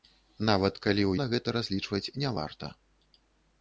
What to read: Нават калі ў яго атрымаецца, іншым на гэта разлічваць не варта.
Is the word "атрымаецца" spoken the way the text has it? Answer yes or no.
no